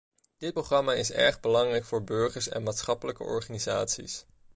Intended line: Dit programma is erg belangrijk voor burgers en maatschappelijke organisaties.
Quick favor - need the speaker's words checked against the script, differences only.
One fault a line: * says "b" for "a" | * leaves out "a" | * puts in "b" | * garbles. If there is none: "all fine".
all fine